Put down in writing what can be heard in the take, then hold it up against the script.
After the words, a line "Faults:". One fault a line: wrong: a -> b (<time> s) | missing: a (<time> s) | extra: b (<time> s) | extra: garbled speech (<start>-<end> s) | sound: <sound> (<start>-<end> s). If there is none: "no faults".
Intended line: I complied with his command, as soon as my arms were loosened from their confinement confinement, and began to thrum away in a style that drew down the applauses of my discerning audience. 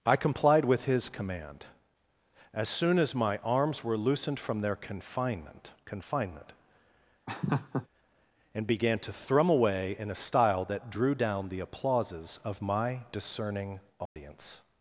I complied with his command, as soon as my arms were loosened from their confinement confinement, and began to thrum away in a style that drew down the applauses of my discerning audience.
Faults:
sound: laugh (7.3-7.9 s)
sound: dropout (14.1-14.2 s)